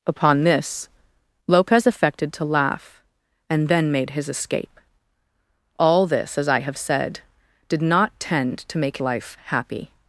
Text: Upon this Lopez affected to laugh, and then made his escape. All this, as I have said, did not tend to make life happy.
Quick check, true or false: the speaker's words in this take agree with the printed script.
true